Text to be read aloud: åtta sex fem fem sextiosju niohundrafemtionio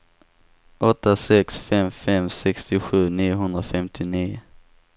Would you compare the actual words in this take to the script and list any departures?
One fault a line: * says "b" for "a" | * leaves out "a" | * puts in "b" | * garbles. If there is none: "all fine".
all fine